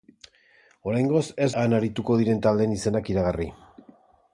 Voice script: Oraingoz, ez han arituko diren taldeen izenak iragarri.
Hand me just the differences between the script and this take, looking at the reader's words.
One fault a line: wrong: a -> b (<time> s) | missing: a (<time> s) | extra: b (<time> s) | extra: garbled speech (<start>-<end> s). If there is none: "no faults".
no faults